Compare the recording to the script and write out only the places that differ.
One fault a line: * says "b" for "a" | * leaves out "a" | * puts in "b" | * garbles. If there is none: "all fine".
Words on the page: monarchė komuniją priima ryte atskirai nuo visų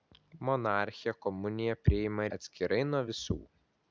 * leaves out "ryte"